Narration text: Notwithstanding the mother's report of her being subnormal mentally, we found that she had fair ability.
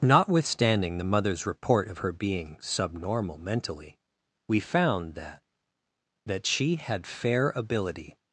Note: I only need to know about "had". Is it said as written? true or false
true